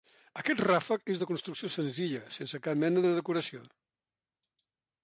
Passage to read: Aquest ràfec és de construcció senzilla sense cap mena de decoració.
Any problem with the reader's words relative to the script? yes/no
no